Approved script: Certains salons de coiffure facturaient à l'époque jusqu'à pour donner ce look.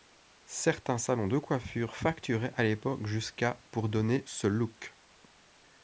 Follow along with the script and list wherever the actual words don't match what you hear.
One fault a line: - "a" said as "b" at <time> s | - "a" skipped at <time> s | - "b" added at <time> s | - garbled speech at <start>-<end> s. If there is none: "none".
none